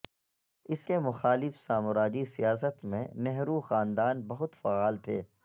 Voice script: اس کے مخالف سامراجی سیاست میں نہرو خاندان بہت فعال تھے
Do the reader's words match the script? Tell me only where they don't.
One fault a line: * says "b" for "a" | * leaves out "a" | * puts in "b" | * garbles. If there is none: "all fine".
all fine